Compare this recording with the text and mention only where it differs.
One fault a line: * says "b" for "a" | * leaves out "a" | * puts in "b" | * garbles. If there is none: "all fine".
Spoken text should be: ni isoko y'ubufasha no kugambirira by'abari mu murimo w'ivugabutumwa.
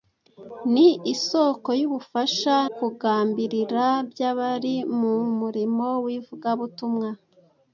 * leaves out "no"